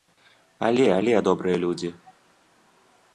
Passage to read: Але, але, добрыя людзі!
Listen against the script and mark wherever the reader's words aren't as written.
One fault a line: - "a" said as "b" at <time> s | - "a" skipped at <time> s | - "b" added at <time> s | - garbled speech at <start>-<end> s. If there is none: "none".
none